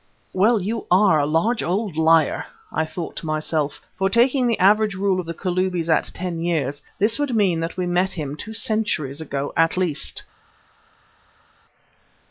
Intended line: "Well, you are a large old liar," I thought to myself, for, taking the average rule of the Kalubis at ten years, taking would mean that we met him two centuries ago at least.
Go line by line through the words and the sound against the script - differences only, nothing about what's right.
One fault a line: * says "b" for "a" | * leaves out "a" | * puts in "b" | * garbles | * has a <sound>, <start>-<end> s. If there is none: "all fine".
* says "this" for "taking"